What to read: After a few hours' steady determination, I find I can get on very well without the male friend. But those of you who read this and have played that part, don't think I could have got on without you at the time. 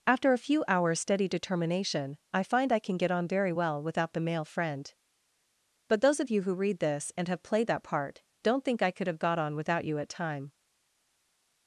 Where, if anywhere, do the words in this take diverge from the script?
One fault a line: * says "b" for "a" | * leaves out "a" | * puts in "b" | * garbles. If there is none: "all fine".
* leaves out "the"